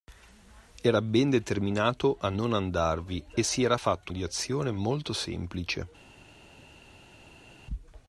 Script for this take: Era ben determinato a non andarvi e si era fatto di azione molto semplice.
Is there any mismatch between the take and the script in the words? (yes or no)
no